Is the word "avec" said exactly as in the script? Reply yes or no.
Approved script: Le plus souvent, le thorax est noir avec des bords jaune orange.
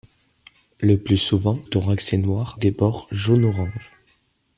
no